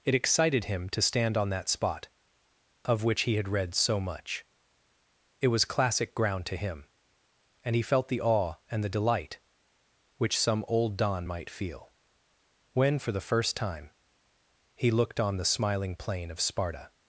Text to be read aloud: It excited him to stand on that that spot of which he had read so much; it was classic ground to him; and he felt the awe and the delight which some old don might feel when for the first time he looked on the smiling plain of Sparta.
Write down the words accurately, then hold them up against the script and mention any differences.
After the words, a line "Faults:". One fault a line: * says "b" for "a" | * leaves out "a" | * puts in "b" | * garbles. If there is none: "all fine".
It excited him to stand on that spot of which he had read so much; it was classic ground to him; and he felt the awe and the delight which some old don might feel when for the first time he looked on the smiling plain of Sparta.
Faults:
* leaves out "that"